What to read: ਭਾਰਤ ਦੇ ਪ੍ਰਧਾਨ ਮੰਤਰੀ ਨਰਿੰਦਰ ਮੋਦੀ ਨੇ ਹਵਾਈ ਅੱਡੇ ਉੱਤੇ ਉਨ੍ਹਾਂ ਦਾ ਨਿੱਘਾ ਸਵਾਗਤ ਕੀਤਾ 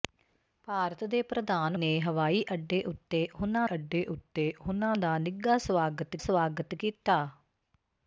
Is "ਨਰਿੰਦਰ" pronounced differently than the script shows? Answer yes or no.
yes